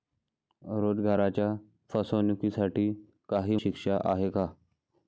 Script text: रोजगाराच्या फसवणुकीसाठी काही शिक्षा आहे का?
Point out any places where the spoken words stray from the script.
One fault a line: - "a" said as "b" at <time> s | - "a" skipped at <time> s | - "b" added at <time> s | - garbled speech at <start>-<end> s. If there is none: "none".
none